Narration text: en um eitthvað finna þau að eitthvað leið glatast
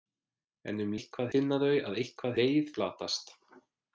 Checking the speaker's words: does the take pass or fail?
pass